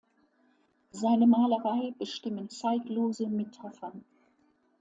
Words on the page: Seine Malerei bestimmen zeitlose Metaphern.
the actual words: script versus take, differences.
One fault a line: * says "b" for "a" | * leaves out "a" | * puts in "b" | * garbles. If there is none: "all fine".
all fine